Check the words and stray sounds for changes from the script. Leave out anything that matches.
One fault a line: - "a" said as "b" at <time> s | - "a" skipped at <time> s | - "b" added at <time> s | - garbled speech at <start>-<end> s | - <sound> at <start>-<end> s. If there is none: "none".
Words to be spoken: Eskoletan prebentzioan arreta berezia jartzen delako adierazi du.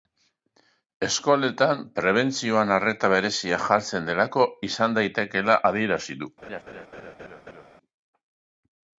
- "izan daitekeela" added at 4.7 s
- laugh at 6.4-7.7 s